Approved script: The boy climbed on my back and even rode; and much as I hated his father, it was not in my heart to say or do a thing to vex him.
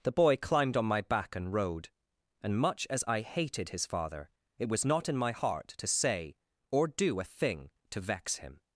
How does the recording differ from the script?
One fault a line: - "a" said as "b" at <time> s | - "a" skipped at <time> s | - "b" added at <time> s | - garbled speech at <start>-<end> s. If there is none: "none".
- "even" skipped at 1.5 s